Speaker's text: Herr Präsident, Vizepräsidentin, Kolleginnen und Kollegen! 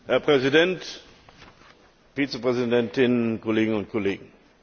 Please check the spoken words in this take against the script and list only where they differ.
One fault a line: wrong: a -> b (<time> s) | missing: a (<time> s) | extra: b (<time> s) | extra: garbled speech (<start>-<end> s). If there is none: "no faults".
no faults